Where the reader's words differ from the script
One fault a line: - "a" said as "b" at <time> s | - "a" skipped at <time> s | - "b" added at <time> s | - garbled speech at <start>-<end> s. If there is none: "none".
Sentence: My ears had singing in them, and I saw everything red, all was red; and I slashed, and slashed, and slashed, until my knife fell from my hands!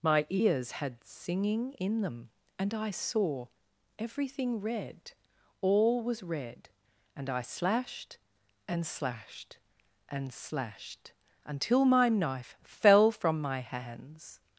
none